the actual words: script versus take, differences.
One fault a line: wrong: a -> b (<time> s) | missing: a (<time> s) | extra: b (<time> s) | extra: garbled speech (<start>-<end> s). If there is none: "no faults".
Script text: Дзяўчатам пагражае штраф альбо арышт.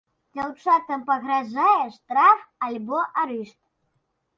no faults